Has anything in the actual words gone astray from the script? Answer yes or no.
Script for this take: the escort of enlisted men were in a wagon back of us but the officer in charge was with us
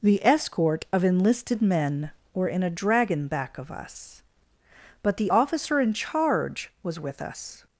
yes